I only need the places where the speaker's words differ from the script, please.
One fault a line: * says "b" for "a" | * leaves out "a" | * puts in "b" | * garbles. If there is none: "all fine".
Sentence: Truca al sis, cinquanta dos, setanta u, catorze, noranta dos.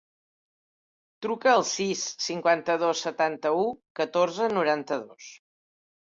all fine